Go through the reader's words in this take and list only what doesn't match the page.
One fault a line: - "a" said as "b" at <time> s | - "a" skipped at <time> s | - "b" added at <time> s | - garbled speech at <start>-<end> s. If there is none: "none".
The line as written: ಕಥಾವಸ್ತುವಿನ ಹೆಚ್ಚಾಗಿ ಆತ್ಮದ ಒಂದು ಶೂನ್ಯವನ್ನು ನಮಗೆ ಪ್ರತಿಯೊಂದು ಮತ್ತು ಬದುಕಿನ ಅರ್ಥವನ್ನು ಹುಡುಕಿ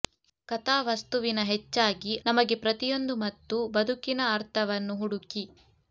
- "ಆತ್ಮದ ಒಂದು ಶೂನ್ಯವನ್ನು" skipped at 2.1 s